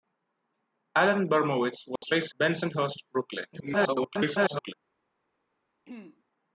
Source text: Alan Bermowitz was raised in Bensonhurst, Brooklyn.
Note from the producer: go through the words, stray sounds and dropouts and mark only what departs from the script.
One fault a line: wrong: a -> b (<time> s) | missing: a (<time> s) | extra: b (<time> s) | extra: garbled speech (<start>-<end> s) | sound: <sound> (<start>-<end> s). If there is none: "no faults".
sound: dropout (2.0-2.0 s)
missing: in (2.3 s)
extra: garbled speech (3.5-4.7 s)
sound: throat clearing (5.9-6.2 s)